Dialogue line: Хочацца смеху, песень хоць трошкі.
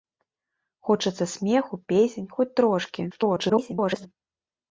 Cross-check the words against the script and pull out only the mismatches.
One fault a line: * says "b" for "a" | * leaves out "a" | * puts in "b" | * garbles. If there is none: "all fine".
* garbles